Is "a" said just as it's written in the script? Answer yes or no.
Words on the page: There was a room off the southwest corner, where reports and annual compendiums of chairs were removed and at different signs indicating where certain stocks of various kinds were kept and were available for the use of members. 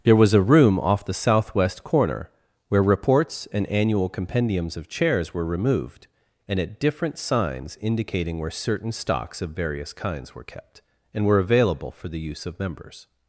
yes